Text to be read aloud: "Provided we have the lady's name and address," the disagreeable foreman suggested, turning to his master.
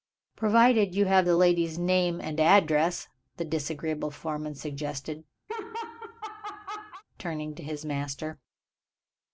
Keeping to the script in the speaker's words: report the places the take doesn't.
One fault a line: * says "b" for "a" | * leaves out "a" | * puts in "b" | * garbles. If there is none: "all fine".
* says "you" for "we"